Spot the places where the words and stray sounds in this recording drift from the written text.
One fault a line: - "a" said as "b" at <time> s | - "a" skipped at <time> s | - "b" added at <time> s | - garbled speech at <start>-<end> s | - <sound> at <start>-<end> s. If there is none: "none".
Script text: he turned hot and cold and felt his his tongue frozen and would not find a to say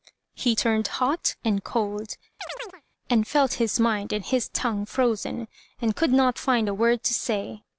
- chirp at 2.4-2.8 s
- "mind and" added at 3.8 s
- "would" said as "could" at 5.9 s
- "word" added at 6.7 s